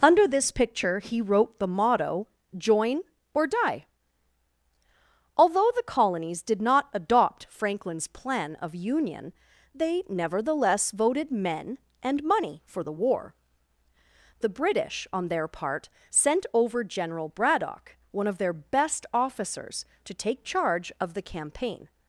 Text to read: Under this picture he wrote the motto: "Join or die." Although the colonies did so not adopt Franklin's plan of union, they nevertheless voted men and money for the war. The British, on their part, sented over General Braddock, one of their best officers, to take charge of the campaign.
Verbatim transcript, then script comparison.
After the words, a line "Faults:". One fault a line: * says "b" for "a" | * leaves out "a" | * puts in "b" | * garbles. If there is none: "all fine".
Under this picture he wrote the motto: "Join or die." Although the colonies did not adopt Franklin's plan of union, they nevertheless voted men and money for the war. The British, on their part, sent over General Braddock, one of their best officers, to take charge of the campaign.
Faults:
* leaves out "so"
* says "sent" for "sented"